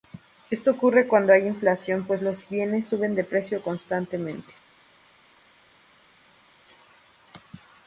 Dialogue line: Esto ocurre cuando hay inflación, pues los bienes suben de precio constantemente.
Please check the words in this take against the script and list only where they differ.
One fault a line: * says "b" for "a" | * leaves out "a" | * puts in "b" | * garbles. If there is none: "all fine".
all fine